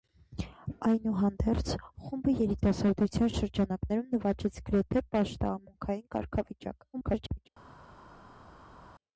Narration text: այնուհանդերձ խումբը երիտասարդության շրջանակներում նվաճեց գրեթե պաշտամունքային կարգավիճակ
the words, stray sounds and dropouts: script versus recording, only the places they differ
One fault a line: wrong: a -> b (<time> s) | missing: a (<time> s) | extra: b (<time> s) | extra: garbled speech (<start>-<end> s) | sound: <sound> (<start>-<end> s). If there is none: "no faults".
extra: garbled speech (6.9-7.5 s)